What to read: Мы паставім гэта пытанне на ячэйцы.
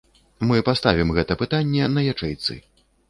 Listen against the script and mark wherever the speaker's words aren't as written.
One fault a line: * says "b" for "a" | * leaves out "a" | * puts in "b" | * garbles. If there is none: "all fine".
all fine